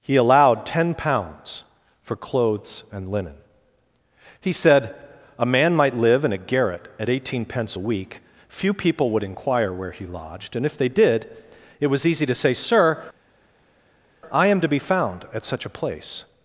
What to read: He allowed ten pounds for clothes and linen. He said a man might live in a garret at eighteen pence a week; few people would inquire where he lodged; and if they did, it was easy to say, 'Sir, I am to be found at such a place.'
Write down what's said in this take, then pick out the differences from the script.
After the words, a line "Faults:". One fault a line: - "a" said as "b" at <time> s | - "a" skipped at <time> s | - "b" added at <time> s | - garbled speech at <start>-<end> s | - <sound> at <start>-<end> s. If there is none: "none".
He allowed ten pounds for clothes and linen. He said a man might live in a garret at eighteen pence a week; few people would inquire where he lodged; and if they did, it was easy to say, 'Sir, I am to be found at such a place.'
Faults:
none